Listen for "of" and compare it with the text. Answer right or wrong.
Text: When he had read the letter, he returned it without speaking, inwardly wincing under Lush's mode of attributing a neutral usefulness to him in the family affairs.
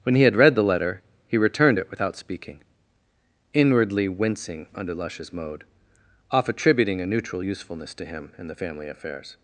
wrong